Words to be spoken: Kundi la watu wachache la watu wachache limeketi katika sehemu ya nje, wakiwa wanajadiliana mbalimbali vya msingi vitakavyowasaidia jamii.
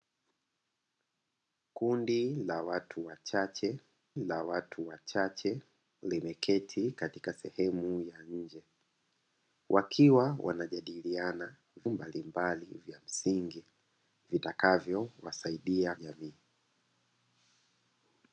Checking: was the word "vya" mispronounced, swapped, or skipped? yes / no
no